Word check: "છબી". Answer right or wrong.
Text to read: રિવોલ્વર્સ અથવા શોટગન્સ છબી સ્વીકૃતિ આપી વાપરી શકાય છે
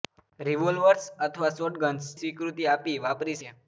wrong